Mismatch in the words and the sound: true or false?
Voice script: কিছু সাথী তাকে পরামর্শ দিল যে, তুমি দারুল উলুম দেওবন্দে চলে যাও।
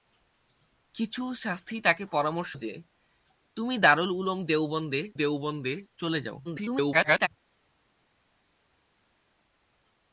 true